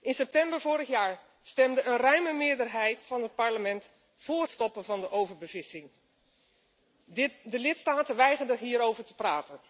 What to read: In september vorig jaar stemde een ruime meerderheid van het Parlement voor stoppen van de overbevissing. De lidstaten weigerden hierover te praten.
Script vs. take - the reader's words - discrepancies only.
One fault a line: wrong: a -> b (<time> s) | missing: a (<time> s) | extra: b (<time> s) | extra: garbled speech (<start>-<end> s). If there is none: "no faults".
no faults